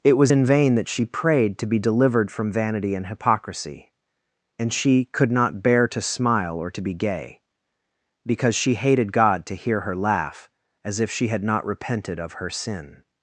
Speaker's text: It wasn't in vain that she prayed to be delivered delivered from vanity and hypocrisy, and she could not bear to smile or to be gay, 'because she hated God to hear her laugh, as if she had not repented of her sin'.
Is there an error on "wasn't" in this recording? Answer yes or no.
yes